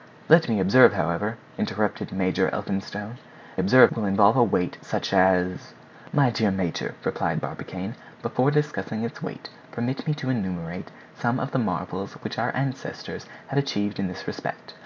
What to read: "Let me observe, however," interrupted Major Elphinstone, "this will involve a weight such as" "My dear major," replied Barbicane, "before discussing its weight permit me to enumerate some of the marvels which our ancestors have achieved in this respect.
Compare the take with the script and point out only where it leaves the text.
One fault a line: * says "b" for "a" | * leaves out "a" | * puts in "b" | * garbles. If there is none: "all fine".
* says "observe" for "this"